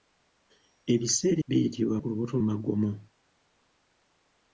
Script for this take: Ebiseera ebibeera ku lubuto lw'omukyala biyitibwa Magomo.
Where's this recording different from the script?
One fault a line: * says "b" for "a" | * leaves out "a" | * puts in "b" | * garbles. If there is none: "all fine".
* says "biyitibwa" for "ebibeera"
* leaves out "lw'omukyala biyitibwa"